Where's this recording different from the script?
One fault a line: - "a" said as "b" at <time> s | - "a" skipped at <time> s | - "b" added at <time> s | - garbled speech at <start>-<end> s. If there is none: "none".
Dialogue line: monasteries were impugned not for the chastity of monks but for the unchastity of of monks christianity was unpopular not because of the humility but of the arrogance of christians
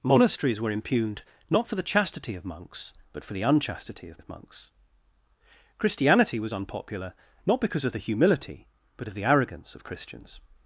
none